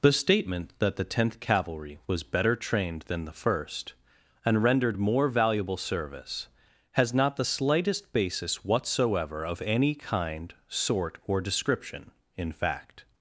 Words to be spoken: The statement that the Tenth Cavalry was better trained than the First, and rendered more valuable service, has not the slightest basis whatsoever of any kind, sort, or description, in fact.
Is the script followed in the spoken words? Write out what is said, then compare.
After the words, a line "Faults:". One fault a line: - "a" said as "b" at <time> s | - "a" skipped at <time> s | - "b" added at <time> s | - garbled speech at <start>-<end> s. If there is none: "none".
The statement that the Tenth Cavalry was better trained than the First, and rendered more valuable service, has not the slightest basis whatsoever of any kind, sort, or description, in fact.
Faults:
none